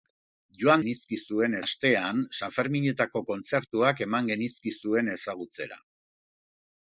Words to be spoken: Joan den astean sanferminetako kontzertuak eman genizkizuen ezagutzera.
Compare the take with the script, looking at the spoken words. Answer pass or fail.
fail